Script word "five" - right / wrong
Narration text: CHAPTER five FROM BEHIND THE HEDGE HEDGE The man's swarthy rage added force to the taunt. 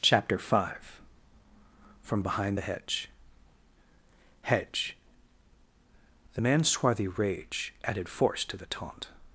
right